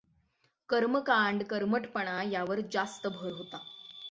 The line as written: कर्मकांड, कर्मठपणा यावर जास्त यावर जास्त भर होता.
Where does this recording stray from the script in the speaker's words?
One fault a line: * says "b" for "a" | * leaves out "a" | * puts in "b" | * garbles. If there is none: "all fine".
* leaves out "यावर जास्त"